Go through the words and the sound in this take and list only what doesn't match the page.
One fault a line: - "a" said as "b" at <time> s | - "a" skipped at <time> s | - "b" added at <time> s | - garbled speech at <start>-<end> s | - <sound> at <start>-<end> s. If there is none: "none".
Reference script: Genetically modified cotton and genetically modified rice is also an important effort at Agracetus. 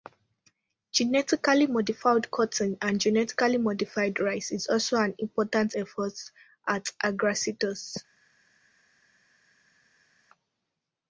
none